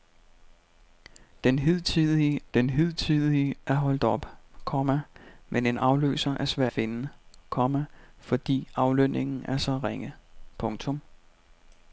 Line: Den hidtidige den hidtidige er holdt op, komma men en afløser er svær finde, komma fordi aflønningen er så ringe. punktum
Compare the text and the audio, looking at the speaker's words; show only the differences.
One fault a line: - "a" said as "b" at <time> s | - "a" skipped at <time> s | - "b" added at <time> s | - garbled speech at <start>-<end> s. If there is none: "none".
none